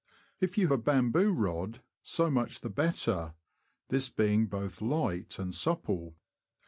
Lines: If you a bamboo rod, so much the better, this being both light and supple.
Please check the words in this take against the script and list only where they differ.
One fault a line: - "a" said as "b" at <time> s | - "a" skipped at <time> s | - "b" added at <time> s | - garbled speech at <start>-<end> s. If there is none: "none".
none